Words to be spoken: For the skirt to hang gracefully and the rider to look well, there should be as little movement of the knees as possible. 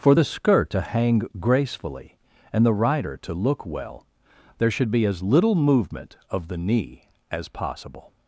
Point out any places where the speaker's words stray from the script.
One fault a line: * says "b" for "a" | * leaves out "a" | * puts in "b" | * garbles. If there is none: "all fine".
* says "knee" for "knees"